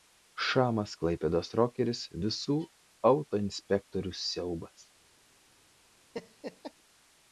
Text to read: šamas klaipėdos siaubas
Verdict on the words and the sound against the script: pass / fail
fail